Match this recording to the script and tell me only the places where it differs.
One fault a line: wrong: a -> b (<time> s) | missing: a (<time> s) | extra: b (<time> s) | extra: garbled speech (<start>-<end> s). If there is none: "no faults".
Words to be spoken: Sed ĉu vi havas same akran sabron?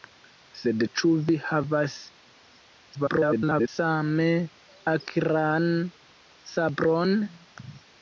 extra: garbled speech (2.9-3.7 s)